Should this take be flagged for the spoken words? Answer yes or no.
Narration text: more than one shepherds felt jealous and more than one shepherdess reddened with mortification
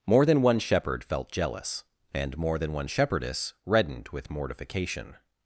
yes